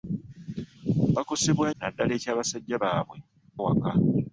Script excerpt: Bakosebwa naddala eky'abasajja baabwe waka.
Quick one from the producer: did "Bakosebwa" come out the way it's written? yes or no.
yes